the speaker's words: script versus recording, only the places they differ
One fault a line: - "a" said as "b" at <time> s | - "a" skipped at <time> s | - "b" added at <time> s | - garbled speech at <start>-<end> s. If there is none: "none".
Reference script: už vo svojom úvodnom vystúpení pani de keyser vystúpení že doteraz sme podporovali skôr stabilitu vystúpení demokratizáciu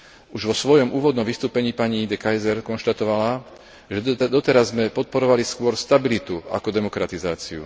- "vystúpení" said as "konštatovala" at 2.6 s
- "vystúpení" said as "ako" at 6.5 s